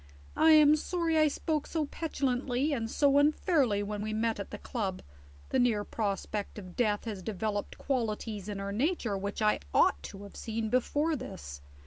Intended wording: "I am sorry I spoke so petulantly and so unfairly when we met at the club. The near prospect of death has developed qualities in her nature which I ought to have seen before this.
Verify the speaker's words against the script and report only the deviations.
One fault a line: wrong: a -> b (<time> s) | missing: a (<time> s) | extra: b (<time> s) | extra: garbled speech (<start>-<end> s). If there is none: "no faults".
no faults